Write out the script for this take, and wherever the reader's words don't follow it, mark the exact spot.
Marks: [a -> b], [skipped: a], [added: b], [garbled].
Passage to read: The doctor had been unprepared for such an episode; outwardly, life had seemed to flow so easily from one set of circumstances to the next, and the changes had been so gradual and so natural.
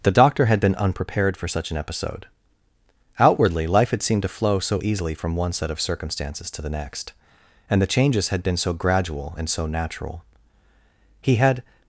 The doctor had been unprepared for such an episode; outwardly, life had seemed to flow so easily from one set of circumstances to the next, and the changes had been so gradual and so natural. [added: He had]